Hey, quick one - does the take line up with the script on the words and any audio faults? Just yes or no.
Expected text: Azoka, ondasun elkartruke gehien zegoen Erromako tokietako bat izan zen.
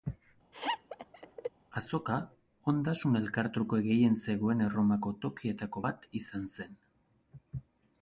no